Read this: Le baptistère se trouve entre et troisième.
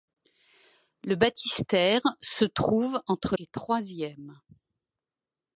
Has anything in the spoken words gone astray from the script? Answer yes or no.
no